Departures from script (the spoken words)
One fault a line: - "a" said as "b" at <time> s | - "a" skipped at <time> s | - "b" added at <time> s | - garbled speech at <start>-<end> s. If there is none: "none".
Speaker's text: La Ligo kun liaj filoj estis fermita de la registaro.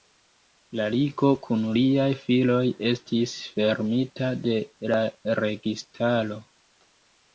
none